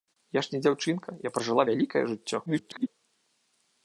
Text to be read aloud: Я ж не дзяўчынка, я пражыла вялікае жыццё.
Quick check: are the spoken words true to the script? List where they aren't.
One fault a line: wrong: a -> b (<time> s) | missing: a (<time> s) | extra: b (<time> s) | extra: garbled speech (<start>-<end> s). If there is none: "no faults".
extra: garbled speech (2.5-2.9 s)